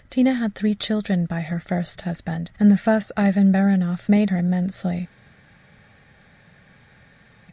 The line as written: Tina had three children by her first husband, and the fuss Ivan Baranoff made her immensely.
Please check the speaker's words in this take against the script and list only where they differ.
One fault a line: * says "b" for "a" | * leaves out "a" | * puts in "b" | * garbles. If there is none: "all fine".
all fine